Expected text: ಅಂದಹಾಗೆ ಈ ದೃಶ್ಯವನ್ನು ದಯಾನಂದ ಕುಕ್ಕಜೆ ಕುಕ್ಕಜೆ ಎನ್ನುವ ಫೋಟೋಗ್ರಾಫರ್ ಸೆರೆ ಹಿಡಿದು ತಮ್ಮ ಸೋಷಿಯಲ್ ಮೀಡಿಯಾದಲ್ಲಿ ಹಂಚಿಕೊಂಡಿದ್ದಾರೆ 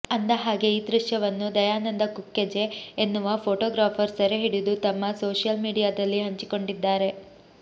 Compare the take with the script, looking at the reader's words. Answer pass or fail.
fail